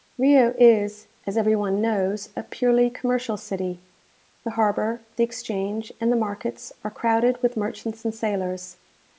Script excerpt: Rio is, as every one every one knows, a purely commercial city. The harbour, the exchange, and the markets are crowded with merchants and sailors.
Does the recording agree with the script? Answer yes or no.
no